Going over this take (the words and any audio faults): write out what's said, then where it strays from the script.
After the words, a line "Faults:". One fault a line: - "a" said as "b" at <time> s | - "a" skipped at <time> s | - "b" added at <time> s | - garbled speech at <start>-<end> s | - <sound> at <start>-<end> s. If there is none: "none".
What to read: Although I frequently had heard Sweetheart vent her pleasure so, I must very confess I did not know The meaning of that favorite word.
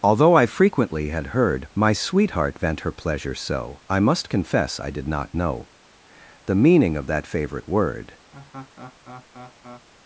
Although I frequently had heard My sweetheart vent her pleasure so, I must confess I did not know The meaning of that favorite word.
Faults:
- "My" added at 1.8 s
- "very" skipped at 4.3 s
- laugh at 8.3-9.9 s